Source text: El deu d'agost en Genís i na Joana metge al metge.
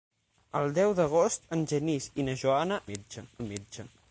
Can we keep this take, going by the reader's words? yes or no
yes